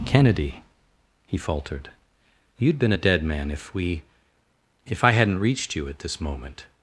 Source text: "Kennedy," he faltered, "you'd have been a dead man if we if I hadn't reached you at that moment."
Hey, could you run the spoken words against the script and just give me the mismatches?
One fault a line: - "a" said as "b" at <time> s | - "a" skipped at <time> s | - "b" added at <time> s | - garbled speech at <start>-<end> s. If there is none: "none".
- "have" skipped at 2.8 s
- "that" said as "this" at 6.0 s